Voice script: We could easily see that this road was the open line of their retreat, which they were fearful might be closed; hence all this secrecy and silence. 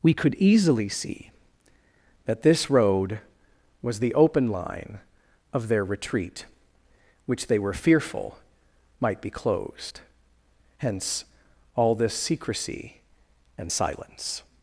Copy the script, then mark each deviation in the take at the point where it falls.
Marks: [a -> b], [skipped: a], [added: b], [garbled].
We could easily see that this road was the open line of their retreat, which they were fearful might be closed; hence all this secrecy and silence.